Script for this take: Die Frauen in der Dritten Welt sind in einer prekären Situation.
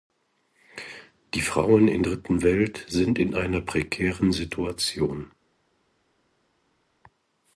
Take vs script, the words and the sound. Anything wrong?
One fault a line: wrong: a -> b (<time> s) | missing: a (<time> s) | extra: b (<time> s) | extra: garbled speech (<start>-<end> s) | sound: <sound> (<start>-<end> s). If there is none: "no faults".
missing: der (2.0 s)